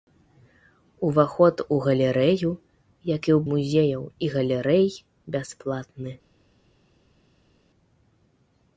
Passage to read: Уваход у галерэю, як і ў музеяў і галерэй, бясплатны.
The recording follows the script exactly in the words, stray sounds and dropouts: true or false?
true